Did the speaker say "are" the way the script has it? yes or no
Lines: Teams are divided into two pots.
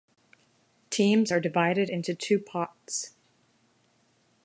yes